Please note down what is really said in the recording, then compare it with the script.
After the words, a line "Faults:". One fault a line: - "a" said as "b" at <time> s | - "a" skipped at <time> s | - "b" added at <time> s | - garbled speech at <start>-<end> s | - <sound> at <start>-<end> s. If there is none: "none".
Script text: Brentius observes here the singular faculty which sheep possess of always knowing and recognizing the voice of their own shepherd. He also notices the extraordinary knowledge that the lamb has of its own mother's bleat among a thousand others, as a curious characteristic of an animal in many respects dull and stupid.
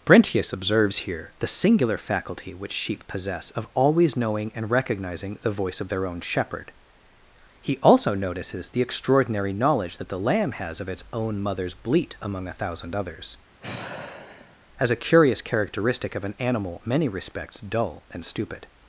Brentius observes here the singular faculty which sheep possess of always knowing and recognizing the voice of their own shepherd. He also notices the extraordinary knowledge that the lamb has of its own mother's bleat among a thousand others, as a curious characteristic of an animal many respects dull and stupid.
Faults:
- sigh at 13.6-14.7 s
- "in" skipped at 16.8 s